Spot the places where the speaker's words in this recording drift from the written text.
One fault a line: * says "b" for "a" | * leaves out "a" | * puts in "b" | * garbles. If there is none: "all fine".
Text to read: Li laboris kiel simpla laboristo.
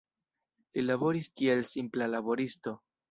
all fine